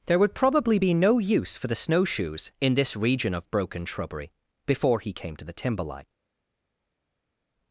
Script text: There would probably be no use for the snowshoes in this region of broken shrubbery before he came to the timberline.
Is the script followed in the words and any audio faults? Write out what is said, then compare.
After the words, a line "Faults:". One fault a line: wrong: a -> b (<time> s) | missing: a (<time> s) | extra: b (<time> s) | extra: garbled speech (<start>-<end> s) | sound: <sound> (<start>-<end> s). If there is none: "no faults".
There would probably be no use for the snowshoes in this region of broken shrubbery before he came to the timberline.
Faults:
no faults